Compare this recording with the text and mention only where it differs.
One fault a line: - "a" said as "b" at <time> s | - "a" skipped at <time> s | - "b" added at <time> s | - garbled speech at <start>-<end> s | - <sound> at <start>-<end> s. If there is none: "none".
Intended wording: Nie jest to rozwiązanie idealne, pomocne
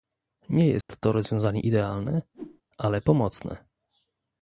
- dropout at 0.8-0.9 s
- whoosh at 2.3-2.6 s
- "ale" added at 2.8 s